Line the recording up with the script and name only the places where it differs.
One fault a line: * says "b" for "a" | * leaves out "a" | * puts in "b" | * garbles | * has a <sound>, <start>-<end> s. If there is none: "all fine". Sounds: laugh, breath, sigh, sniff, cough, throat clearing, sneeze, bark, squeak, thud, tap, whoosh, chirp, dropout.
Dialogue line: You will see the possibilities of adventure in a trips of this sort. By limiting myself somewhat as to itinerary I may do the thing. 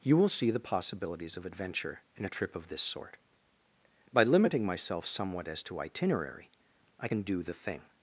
* says "trip" for "trips"
* says "can" for "may"